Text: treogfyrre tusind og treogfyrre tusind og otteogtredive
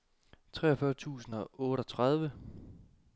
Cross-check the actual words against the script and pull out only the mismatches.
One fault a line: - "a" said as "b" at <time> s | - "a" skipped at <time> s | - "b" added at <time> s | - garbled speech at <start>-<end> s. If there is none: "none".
- "treogfyrre tusind og" skipped at 1.5 s